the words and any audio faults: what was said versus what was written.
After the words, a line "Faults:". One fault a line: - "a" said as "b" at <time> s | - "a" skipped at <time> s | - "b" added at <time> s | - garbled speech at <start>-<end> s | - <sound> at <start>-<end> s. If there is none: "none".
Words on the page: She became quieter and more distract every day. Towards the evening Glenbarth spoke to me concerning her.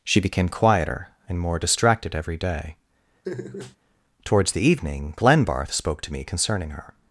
She became quieter and more distracted every day. Towards the evening Glenbarth spoke to me concerning her.
Faults:
- "distract" said as "distracted" at 1.6 s
- laugh at 3.2-3.8 s